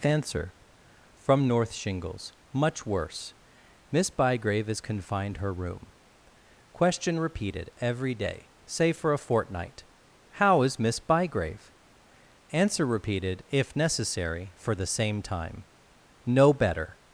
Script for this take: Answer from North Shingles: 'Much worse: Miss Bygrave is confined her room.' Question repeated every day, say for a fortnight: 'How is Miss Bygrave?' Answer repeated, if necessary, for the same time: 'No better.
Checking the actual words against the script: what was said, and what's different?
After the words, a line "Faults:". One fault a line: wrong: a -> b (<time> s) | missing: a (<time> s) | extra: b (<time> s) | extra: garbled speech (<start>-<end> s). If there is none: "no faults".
Answer from North Shingles: 'Much worse: Miss Bygrave is confined her room.' Question repeated every day, say for a fortnight: 'How is Miss Bygrave?' Answer repeated, if necessary, for the same time: 'No better.
Faults:
no faults